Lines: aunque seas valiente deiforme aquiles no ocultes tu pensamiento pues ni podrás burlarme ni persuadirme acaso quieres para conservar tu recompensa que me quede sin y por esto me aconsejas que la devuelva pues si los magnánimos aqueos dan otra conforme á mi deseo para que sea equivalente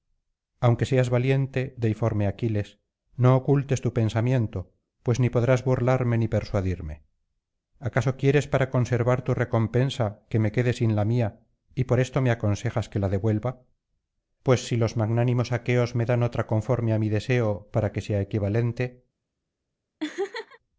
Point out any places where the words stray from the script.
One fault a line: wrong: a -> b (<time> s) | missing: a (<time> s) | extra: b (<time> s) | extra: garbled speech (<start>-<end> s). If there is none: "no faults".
extra: la mía (10.9 s)
extra: me (15.9 s)